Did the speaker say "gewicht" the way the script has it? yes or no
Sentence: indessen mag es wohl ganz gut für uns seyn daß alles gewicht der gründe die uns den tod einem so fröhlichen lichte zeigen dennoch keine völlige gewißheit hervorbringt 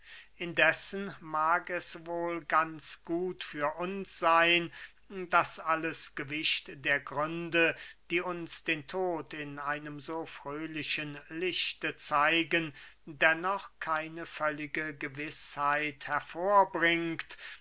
yes